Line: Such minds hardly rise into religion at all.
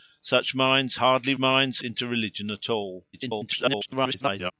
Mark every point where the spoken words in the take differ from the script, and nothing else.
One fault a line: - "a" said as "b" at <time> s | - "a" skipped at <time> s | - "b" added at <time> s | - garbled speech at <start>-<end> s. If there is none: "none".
- "rise" said as "minds" at 1.4 s
- garbled speech at 3.1-4.5 s